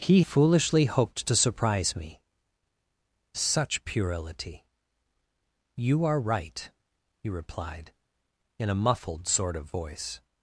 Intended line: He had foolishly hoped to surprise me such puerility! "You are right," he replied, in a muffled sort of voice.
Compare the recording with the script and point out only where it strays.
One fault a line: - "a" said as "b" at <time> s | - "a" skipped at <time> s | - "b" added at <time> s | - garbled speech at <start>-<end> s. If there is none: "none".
- "had" skipped at 0.2 s